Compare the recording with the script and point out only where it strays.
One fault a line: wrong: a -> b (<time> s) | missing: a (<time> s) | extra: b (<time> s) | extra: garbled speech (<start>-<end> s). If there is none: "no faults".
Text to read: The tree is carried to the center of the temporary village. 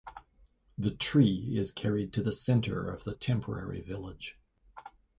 no faults